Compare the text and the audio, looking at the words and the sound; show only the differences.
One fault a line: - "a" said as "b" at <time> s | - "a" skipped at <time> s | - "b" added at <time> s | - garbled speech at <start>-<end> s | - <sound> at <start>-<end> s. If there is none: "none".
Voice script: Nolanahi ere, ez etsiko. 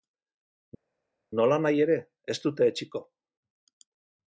- "dute" added at 2.5 s